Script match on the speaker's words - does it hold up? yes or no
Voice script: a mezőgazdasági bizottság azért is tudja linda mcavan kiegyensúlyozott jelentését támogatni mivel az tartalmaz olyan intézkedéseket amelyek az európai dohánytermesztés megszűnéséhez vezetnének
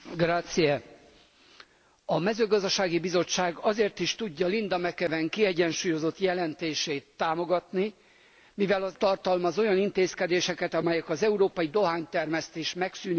yes